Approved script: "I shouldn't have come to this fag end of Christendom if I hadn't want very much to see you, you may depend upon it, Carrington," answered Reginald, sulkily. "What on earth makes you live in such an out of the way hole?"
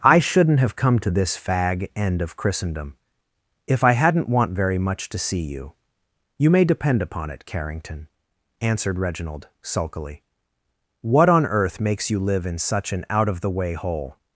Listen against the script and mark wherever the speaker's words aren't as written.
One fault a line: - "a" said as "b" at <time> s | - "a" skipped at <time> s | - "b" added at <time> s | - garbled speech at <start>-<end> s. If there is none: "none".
none